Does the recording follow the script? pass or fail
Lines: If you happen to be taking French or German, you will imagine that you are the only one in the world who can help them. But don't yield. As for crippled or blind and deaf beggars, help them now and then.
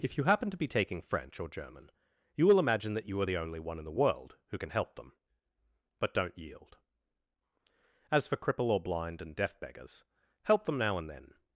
fail